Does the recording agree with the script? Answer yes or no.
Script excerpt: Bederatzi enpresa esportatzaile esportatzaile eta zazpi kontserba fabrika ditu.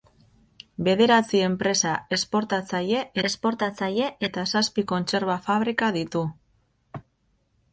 yes